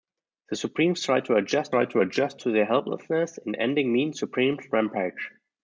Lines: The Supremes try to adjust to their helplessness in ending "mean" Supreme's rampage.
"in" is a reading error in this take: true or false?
false